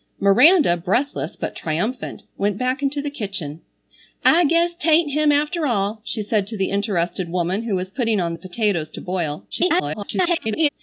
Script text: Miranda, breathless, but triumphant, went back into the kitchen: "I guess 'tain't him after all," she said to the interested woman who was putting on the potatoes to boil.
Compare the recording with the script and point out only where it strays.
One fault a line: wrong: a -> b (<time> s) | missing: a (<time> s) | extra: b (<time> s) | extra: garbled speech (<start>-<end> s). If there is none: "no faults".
extra: garbled speech (9.5-10.7 s)